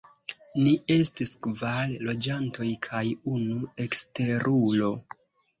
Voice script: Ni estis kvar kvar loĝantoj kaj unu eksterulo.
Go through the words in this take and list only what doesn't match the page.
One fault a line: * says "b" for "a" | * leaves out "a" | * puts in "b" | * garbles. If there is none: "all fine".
* leaves out "kvar"